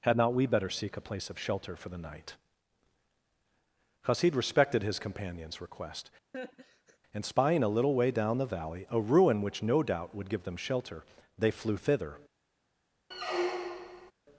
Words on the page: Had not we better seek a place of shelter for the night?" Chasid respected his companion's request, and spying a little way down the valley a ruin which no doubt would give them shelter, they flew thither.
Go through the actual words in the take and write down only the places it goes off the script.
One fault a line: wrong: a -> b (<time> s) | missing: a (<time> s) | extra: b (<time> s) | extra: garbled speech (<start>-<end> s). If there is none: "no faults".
no faults